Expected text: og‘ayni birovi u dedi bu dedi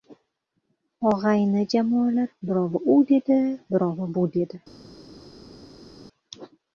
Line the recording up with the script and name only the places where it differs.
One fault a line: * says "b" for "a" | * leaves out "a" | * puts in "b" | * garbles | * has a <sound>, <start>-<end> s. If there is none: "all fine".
* puts in "jamoalar"
* puts in "birovi"